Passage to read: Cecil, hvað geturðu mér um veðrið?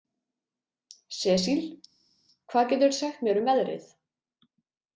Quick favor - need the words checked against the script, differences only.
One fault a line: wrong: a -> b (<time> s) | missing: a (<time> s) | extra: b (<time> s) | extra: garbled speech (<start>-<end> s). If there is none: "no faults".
extra: sagt (3.0 s)